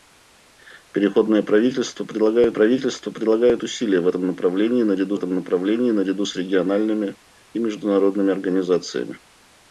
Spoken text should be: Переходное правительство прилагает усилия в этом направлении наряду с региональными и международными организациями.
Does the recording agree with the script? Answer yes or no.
no